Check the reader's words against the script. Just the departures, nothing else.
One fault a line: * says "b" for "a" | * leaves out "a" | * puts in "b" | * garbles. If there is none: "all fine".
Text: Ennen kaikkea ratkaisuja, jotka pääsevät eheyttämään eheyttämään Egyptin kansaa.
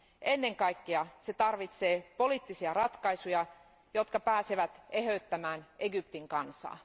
* puts in "se tarvitsee poliittisia"
* leaves out "eheyttämään"